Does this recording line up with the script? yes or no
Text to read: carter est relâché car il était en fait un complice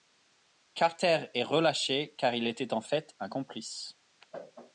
yes